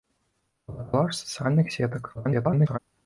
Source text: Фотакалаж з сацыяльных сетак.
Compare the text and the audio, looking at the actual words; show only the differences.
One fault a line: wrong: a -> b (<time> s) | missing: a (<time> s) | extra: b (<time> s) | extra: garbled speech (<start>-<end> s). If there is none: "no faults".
extra: garbled speech (2.1-2.8 s)